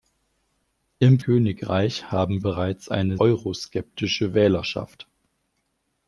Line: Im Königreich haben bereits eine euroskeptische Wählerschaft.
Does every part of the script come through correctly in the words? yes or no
yes